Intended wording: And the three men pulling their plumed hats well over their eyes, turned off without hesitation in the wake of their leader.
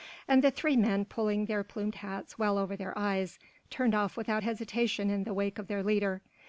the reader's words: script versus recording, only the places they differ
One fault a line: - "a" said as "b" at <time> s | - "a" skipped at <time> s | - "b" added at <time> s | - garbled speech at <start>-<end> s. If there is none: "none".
none